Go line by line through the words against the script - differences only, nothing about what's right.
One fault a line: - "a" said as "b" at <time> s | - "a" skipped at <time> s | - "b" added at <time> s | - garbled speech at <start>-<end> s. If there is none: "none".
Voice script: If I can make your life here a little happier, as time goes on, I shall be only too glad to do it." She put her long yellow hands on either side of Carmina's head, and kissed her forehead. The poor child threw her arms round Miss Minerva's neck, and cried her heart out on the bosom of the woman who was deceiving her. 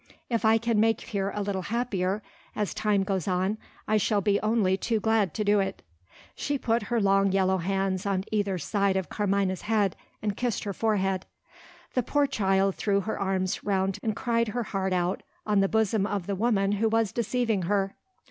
- "your life" skipped at 1.0 s
- "Miss Minerva's neck" skipped at 14.0 s